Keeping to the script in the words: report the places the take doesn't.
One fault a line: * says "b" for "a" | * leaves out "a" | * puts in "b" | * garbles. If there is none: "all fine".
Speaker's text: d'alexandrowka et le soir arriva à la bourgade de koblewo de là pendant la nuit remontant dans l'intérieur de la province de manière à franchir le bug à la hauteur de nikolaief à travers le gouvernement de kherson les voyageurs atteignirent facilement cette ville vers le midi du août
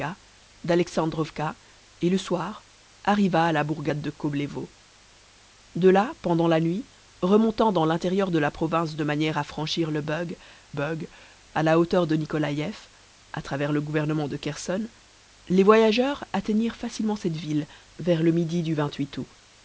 * puts in "bug"